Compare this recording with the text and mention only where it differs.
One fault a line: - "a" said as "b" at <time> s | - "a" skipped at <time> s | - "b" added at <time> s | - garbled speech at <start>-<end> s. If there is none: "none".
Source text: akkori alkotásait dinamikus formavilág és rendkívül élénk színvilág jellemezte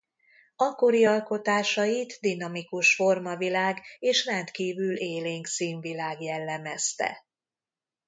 none